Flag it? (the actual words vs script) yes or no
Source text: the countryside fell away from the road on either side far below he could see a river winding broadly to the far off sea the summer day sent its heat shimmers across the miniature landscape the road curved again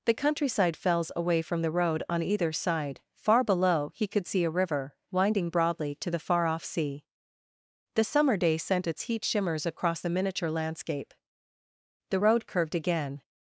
yes